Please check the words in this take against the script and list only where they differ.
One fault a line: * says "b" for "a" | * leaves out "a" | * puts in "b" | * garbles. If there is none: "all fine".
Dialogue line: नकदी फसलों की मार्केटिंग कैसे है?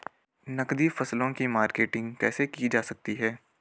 * puts in "की जा सकती"